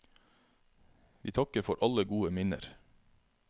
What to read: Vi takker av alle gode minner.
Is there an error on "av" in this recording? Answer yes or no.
yes